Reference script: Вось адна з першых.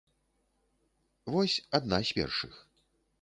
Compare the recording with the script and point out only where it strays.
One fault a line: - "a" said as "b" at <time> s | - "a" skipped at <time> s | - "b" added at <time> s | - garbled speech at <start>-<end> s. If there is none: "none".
none